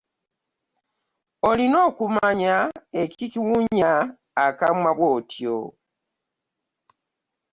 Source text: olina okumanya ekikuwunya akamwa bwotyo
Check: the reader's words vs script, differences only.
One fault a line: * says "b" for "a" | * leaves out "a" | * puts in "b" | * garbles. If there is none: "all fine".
all fine